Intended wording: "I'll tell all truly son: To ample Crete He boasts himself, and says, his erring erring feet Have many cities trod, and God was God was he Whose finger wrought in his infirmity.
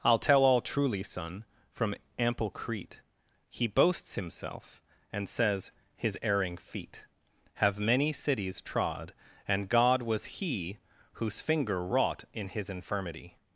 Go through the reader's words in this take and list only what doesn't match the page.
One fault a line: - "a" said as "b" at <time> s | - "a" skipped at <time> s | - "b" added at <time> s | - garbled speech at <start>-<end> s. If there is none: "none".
- "To" said as "From" at 1.7 s
- "erring" skipped at 6.6 s
- "God was" skipped at 10.2 s